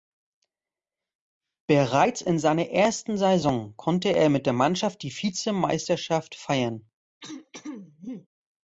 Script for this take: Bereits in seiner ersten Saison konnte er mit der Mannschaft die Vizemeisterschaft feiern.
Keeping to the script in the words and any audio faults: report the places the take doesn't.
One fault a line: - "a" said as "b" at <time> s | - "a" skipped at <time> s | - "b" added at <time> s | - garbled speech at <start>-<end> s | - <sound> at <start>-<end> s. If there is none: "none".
- throat clearing at 7.2-8.3 s